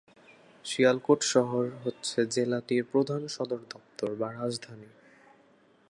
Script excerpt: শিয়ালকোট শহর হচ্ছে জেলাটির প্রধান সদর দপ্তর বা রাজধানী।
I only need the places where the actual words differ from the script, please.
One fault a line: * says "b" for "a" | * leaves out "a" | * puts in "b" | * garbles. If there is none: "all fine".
all fine